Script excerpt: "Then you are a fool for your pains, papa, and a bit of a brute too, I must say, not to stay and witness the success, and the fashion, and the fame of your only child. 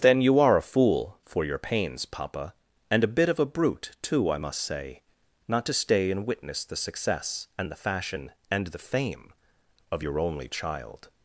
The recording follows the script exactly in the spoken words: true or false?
true